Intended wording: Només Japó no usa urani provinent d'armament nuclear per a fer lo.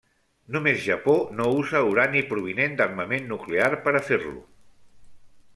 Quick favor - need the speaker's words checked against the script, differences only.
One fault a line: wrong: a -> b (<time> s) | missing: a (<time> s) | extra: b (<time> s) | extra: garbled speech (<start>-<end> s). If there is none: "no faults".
no faults